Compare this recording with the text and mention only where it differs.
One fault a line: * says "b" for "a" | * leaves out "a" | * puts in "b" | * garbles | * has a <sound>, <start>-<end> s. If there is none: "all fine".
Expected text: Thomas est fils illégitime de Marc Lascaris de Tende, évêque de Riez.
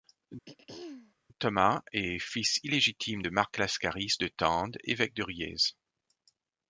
* has a throat clearing, 0.5-1.1 s